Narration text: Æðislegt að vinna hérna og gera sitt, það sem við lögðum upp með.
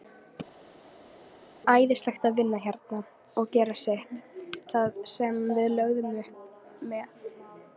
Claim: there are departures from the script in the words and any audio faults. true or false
false